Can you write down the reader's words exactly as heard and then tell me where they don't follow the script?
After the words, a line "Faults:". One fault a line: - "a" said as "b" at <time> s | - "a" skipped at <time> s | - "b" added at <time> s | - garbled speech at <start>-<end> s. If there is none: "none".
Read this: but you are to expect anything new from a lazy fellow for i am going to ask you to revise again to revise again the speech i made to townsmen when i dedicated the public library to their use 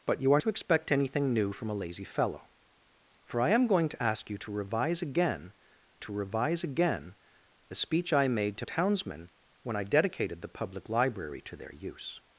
but you are to expect anything new from a lazy fellow for i am going to ask you to revise again to revise again the speech i made to townsmen when i dedicated the public library to their use
Faults:
none